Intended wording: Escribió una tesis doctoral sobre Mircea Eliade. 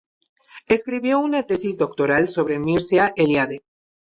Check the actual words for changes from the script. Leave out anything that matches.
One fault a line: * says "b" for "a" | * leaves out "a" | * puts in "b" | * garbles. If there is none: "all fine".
all fine